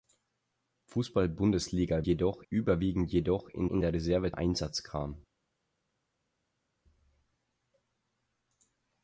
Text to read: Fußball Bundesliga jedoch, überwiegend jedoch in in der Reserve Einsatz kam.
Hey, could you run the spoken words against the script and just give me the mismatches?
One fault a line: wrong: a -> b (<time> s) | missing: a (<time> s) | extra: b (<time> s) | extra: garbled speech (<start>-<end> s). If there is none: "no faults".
no faults